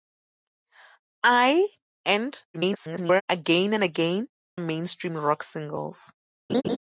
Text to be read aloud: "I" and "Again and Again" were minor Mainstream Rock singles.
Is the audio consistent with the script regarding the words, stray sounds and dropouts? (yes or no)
no